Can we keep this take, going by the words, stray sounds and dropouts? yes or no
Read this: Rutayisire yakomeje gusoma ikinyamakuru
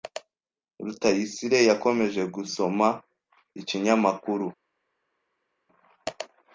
yes